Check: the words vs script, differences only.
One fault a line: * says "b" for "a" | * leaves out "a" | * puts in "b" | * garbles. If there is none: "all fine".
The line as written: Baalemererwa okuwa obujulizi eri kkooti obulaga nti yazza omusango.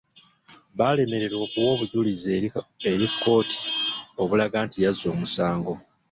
all fine